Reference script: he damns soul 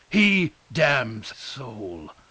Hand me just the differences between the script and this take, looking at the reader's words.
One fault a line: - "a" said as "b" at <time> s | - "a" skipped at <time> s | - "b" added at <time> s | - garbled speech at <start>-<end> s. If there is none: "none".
none